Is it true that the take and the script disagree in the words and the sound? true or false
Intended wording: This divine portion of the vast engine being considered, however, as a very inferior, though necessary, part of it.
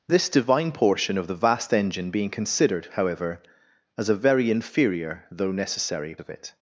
true